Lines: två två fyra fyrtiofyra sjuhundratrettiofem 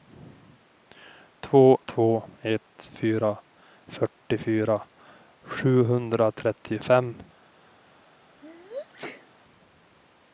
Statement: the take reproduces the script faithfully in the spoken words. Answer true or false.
false